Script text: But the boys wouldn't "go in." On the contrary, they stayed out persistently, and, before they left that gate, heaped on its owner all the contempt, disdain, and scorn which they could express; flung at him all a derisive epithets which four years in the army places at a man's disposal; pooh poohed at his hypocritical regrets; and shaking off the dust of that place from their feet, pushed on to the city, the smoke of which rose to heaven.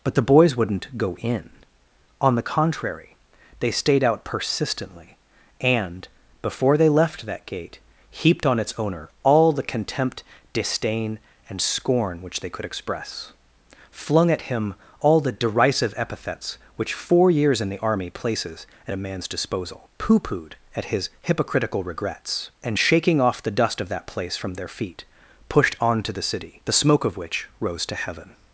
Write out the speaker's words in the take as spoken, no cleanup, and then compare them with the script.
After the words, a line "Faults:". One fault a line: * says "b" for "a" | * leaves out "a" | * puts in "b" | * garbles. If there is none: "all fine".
But the boys wouldn't "go in." On the contrary, they stayed out persistently, and, before they left that gate, heaped on its owner all the contempt, disdain, and scorn which they could express; flung at him all the derisive epithets which four years in the army places at a man's disposal; pooh poohed at his hypocritical regrets; and shaking off the dust of that place from their feet, pushed on to the city, the smoke of which rose to heaven.
Faults:
* says "the" for "a"